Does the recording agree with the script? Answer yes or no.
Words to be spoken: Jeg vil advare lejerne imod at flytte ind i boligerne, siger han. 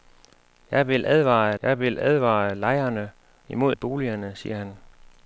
no